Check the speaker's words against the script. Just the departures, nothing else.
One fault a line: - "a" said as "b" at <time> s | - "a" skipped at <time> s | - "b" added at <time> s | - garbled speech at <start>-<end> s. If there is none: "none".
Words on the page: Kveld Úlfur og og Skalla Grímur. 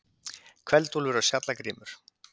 none